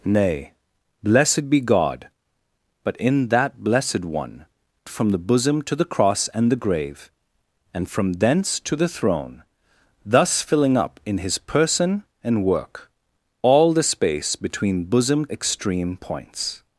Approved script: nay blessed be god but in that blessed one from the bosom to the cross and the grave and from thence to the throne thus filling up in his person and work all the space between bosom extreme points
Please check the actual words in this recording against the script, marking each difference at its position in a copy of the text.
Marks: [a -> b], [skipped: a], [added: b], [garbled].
nay blessed be god but in that blessed one from the bosom to the cross and the grave and from thence to the throne thus filling up in his person and work all the space between bosom extreme points